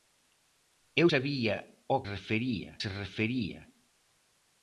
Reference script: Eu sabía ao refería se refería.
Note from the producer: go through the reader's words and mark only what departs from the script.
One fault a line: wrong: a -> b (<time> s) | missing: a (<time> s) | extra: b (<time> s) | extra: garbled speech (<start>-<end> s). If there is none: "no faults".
no faults